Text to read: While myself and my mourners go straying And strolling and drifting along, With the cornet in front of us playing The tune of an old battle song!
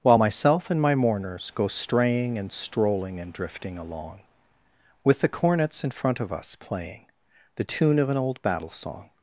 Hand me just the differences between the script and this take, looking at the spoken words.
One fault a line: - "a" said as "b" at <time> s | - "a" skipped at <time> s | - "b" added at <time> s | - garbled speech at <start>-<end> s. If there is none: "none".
- "cornet" said as "cornets" at 5.3 s